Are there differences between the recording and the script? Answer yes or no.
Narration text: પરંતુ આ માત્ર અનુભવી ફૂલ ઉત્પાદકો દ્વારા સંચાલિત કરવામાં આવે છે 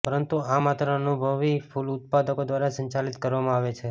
no